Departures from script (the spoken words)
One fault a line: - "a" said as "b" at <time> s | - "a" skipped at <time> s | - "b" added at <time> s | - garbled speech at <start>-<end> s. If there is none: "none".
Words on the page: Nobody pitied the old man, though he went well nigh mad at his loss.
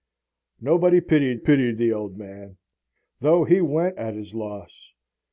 - "pitied" added at 1.4 s
- "well nigh mad" skipped at 4.0 s